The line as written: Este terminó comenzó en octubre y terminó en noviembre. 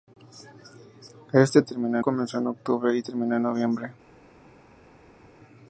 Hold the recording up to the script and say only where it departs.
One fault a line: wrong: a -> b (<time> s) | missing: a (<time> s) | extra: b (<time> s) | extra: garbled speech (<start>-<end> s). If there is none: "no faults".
no faults